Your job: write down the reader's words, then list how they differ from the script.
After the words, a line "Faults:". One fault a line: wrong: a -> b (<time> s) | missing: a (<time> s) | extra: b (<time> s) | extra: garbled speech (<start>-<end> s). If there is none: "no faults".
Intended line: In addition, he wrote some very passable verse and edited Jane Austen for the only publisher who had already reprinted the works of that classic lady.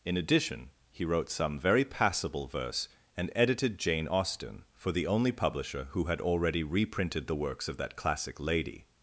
In addition, he wrote some very passable verse and edited Jane Austen for the only publisher who had already reprinted the works of that classic lady.
Faults:
no faults